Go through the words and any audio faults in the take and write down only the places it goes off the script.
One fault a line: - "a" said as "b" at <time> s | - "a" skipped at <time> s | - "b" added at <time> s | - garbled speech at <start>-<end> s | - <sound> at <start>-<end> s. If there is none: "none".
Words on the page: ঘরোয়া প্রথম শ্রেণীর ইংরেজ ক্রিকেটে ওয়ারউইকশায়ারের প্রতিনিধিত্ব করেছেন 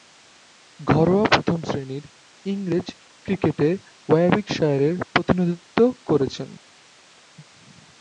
none